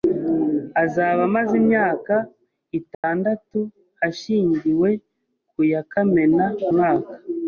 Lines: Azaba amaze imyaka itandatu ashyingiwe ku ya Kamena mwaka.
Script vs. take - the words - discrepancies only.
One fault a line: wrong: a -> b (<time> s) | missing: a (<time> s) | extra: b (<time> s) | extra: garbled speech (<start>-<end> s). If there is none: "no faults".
no faults